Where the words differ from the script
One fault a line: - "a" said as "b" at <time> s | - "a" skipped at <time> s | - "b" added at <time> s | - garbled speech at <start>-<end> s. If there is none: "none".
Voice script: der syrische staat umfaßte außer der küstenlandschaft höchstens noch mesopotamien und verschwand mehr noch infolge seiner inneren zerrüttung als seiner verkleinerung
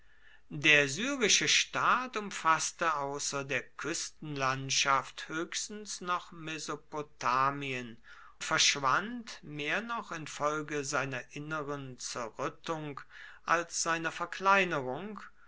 - "und" skipped at 8.0 s